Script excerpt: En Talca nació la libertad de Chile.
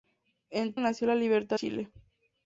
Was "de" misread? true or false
true